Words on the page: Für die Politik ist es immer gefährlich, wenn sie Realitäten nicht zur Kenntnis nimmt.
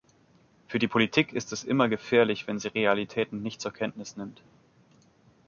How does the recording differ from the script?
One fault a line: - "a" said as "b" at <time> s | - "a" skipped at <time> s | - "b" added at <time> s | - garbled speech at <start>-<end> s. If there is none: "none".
none